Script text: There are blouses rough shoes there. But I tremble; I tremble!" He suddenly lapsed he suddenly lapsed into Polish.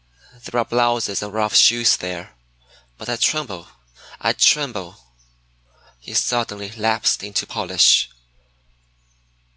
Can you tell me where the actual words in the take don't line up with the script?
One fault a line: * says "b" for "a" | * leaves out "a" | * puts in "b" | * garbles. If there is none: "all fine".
* puts in "and"
* leaves out "he suddenly lapsed"